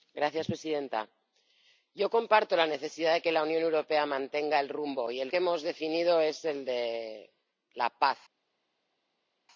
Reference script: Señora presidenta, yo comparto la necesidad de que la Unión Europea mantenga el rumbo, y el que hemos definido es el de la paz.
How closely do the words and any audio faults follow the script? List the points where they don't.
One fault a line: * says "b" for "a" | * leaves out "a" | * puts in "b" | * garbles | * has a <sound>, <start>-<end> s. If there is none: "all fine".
all fine